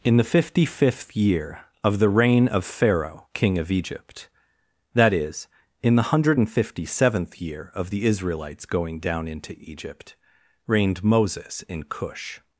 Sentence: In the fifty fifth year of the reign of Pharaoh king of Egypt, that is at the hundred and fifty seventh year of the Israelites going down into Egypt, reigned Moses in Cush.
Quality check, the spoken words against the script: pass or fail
fail